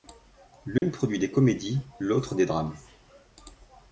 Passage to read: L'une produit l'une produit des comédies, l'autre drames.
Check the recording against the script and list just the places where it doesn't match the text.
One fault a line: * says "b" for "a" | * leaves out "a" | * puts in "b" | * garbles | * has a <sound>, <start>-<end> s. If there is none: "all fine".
* has a dropout, 0.8-0.8 s
* leaves out "l'une produit"
* puts in "des"